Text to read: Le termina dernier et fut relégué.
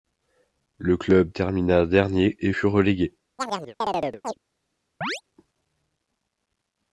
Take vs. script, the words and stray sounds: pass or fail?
fail